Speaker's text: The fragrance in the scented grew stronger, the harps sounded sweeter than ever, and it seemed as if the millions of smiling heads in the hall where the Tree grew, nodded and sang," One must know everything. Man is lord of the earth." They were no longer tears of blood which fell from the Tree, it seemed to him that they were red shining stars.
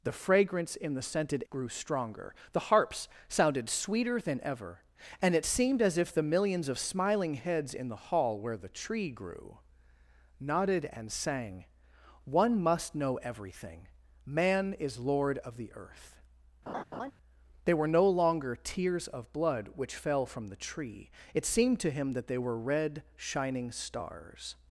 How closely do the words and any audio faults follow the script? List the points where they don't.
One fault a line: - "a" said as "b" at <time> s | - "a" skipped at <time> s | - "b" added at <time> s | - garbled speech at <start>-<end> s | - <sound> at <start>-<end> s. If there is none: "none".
- laugh at 16.7-17.1 s